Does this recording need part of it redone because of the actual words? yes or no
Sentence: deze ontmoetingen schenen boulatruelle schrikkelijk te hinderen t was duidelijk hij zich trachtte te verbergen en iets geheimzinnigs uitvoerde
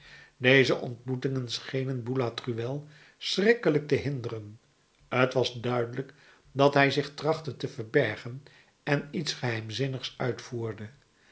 yes